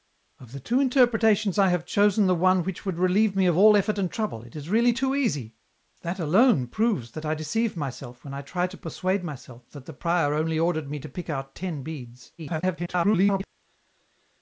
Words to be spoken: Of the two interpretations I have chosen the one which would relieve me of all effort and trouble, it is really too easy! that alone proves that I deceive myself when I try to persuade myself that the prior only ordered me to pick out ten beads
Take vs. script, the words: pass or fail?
fail